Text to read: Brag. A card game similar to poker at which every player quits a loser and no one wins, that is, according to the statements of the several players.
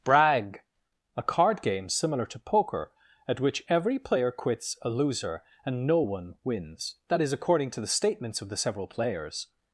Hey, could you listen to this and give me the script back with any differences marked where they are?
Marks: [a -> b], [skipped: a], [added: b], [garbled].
Brag. A card game similar to poker at which every player quits a loser and no one wins, that is, according to the statements of the several players.